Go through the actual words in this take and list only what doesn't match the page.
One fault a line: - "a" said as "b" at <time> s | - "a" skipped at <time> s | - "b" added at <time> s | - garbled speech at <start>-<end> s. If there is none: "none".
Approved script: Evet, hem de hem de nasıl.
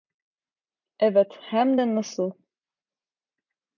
- "hem de" skipped at 1.9 s